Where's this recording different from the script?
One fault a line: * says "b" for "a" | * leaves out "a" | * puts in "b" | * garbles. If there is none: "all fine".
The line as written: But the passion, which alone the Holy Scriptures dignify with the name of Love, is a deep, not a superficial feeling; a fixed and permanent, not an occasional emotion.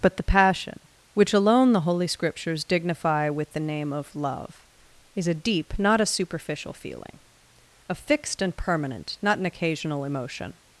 all fine